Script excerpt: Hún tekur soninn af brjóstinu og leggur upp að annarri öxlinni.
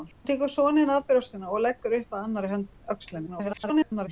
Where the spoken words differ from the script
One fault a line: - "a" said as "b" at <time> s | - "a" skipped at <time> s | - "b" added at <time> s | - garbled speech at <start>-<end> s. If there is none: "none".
- garbled speech at 3.3-4.1 s